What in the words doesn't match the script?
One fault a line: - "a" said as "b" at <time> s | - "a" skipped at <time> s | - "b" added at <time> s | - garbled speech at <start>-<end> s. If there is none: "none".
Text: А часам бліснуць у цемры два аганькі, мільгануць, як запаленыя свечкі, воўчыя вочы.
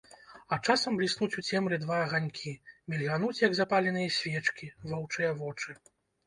none